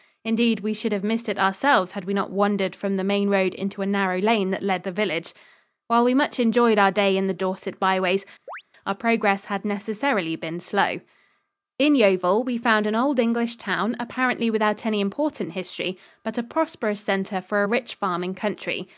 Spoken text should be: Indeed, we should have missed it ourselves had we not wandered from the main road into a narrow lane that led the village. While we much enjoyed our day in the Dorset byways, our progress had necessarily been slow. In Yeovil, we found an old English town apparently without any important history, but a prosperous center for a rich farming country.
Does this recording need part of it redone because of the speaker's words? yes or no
no